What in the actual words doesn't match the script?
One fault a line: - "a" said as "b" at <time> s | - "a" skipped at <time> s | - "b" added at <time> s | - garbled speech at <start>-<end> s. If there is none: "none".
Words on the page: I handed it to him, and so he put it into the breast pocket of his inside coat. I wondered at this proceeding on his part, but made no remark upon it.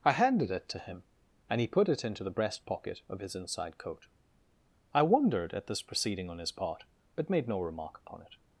- "so" skipped at 1.6 s